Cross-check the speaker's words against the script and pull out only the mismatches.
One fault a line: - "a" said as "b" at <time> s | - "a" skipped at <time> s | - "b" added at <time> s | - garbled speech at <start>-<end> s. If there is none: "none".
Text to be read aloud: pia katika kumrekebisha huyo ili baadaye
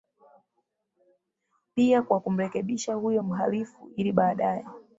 - "katika" said as "kwa" at 2.0 s
- "mhalifu" added at 3.2 s